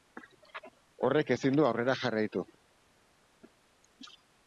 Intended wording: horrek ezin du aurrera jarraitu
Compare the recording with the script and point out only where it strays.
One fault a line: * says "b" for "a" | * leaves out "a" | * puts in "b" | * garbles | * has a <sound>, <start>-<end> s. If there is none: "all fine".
all fine